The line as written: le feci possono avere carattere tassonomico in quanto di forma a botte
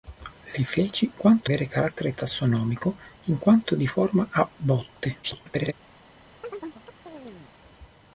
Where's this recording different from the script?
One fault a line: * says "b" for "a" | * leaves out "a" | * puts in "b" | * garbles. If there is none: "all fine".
* says "quanto" for "possono"
* garbles